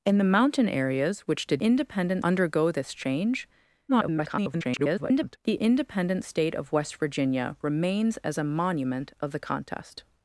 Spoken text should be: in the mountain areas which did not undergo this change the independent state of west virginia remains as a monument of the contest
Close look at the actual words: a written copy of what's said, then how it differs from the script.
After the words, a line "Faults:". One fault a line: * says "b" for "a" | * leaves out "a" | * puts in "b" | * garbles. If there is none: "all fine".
in the mountain areas which did independent undergo this change [garbled] the independent state of west virginia remains as a monument of the contest
Faults:
* says "independent" for "not"
* garbles